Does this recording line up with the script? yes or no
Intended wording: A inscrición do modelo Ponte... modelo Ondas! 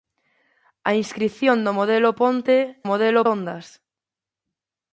yes